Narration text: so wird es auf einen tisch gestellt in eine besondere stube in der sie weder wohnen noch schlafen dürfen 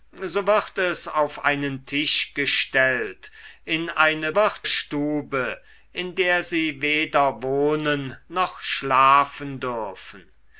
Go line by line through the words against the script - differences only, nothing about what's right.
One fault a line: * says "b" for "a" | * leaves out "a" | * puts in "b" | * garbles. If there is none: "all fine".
* says "wird" for "besondere"